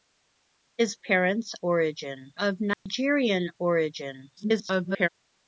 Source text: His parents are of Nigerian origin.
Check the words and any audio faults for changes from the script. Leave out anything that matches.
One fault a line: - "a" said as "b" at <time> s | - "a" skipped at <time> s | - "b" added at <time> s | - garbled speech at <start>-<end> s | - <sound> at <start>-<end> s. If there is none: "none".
- "are" said as "origin" at 1.6 s
- dropout at 2.7-2.9 s
- garbled speech at 4.4-5.1 s